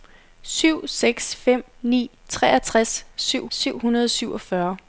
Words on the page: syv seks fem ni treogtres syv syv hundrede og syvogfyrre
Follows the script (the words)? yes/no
yes